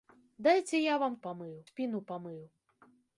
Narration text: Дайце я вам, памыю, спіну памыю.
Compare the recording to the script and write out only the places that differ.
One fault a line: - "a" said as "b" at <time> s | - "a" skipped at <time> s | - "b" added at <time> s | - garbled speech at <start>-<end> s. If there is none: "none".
none